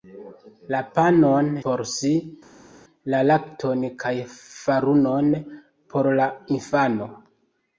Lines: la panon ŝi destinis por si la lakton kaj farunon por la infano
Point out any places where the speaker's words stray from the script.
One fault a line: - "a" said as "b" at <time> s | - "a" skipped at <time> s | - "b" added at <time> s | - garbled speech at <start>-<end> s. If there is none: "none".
- "ŝi destinis" skipped at 1.5 s